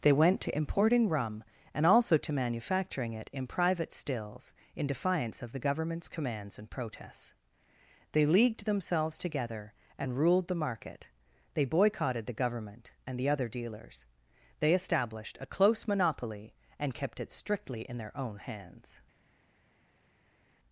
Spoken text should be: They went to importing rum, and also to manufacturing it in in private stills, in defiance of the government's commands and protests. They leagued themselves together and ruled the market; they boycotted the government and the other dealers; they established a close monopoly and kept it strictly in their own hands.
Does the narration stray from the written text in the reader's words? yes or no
yes